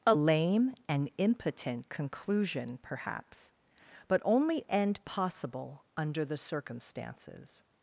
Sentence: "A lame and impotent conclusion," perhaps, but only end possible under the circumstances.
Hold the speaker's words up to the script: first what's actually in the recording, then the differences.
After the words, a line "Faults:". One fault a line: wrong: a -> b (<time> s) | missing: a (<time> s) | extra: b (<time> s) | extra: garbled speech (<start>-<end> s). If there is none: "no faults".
"A lame and impotent conclusion," perhaps, but only end possible under the circumstances.
Faults:
no faults